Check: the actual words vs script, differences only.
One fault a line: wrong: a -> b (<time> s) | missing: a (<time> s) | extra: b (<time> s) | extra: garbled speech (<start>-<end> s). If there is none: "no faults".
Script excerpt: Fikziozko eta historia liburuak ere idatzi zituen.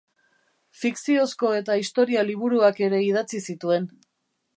no faults